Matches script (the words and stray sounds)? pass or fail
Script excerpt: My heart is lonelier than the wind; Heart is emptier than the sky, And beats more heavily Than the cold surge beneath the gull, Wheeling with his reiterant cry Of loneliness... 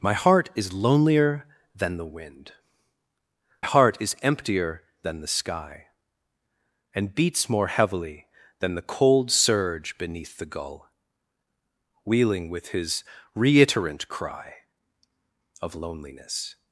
pass